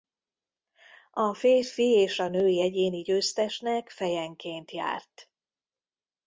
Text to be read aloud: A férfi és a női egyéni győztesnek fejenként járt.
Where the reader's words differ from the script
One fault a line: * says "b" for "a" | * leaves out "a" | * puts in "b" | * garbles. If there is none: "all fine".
all fine